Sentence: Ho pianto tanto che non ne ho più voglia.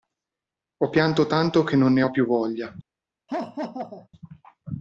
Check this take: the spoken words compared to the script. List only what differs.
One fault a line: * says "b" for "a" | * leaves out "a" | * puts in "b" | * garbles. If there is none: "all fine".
all fine